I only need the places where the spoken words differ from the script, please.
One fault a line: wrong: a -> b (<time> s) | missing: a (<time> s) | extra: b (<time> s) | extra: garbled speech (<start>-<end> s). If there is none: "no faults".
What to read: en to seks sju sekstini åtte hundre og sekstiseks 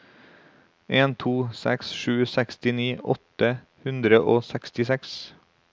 no faults